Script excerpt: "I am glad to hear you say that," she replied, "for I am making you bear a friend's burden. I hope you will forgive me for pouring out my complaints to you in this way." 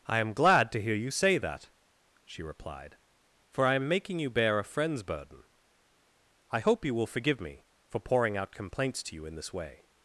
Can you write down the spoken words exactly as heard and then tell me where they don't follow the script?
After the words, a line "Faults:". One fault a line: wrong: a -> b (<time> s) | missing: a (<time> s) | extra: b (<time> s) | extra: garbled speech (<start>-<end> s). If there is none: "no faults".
"I am glad to hear you say that," she replied, "for I am making you bear a friend's burden. I hope you will forgive me for pouring out complaints to you in this way."
Faults:
missing: my (8.5 s)